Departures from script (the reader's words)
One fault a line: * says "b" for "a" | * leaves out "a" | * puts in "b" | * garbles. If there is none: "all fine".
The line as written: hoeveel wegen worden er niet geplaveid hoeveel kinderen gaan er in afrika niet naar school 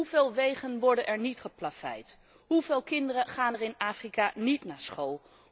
all fine